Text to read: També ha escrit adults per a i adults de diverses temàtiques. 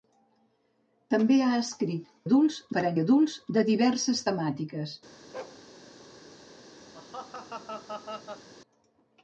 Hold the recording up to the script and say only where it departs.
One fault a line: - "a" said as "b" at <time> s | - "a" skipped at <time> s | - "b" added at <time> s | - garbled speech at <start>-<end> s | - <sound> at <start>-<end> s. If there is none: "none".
- bark at 5.3-5.6 s
- laugh at 6.9-8.5 s